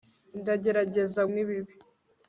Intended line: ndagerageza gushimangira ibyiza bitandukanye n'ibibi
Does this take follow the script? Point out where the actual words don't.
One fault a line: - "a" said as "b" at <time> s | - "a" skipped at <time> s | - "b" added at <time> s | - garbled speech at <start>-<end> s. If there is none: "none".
- "gushimangira ibyiza bitandukanye" skipped at 1.2 s